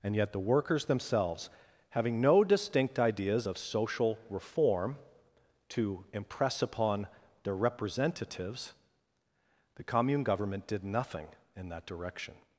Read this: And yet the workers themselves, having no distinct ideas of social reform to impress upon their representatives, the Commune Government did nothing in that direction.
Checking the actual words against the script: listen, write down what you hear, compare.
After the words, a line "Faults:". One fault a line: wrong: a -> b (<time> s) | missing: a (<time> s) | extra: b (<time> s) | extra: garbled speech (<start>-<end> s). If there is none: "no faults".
And yet the workers themselves, having no distinct ideas of social reform to impress upon their representatives, the Commune Government did nothing in that direction.
Faults:
no faults